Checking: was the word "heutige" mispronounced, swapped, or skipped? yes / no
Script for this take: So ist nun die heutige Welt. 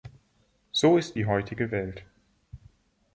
no